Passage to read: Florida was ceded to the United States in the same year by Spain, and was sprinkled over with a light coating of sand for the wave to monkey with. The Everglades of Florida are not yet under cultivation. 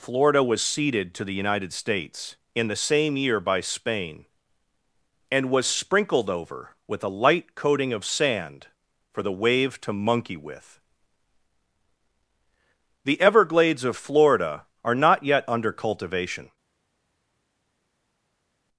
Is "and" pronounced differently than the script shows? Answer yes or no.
no